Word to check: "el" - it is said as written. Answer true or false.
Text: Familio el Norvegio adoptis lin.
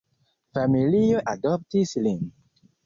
false